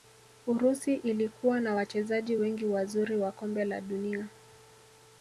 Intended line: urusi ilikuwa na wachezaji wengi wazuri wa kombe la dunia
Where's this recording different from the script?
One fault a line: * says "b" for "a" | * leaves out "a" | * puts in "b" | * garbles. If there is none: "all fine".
all fine